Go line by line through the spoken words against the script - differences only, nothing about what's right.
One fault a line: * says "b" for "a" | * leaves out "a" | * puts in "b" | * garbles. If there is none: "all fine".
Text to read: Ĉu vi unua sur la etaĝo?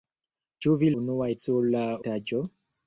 all fine